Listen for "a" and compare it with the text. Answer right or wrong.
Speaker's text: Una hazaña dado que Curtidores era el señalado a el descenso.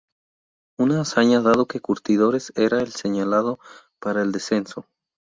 wrong